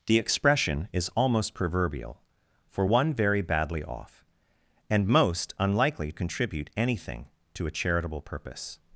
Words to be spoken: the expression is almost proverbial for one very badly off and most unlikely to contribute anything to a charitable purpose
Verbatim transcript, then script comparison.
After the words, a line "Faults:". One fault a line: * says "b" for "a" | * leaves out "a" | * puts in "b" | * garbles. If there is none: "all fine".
the expression is almost proverbial for one very badly off and most unlikely contribute anything to a charitable purpose
Faults:
* leaves out "to"